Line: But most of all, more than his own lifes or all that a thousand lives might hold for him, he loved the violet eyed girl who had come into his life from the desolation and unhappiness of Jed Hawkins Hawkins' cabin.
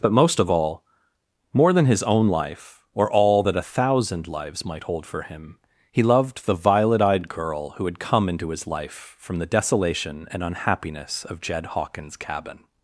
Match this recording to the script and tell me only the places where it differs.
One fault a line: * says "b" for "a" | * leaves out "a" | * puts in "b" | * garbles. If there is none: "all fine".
* says "life" for "lifes"
* leaves out "Hawkins"